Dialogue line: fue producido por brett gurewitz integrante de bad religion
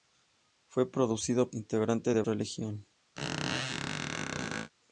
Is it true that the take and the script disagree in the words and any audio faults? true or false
true